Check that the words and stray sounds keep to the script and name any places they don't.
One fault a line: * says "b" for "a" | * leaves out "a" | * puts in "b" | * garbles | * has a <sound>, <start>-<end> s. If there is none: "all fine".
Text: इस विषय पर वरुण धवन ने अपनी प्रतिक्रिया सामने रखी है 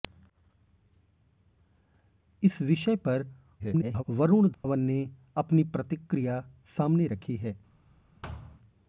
* garbles
* has a dropout, 4.5-4.6 s
* has a thud, 8.2-8.6 s